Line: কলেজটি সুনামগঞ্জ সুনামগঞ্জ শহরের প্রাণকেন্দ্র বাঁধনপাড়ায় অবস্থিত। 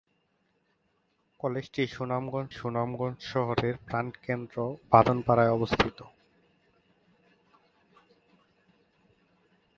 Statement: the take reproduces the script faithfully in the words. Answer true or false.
true